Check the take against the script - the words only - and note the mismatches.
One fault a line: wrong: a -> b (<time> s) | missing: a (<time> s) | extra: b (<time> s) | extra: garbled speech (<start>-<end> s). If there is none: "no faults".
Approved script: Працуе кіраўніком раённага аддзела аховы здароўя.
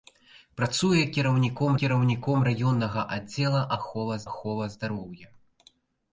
extra: кіраўніком (1.8 s)
extra: аховы (4.3 s)